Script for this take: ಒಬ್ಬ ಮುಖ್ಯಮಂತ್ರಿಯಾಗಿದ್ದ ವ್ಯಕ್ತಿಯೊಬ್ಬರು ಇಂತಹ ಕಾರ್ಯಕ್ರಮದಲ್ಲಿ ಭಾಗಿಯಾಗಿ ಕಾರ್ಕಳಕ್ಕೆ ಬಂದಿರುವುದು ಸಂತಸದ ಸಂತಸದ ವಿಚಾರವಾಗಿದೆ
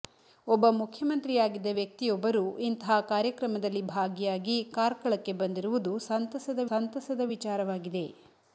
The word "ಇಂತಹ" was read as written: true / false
true